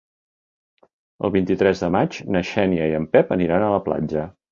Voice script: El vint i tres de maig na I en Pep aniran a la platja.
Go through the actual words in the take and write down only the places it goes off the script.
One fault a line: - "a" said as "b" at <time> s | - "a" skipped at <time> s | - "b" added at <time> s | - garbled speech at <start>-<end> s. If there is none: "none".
- "Xènia" added at 2.5 s